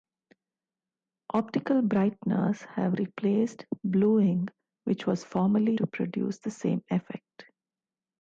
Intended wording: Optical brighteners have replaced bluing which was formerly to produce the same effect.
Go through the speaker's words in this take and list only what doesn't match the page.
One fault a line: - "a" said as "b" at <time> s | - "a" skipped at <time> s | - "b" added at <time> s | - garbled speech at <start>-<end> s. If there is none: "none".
none